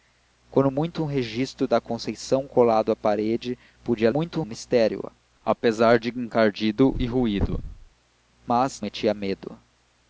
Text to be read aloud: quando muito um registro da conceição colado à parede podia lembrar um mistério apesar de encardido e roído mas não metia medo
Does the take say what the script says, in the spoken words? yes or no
no